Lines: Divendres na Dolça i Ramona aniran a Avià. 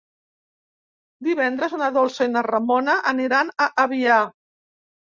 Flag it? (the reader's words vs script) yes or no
yes